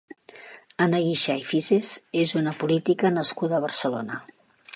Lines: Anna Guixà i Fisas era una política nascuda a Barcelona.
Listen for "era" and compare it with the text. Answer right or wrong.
wrong